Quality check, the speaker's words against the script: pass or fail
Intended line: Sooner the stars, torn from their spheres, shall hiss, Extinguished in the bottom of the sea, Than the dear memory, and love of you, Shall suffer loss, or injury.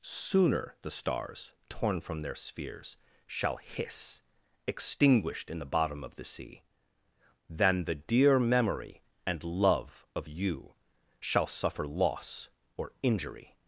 pass